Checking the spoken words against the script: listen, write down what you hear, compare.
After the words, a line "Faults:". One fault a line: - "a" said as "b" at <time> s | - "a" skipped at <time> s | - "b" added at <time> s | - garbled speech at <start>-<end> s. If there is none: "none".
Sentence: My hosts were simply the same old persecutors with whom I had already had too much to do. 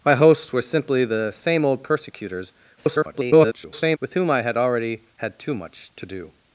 My hosts were simply the same old persecutors [garbled] with whom I had already had too much to do.
Faults:
- garbled speech at 2.8-4.0 s